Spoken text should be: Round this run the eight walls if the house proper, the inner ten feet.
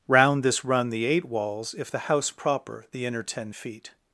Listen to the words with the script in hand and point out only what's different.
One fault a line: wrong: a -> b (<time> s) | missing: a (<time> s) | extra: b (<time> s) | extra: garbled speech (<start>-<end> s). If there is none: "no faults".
no faults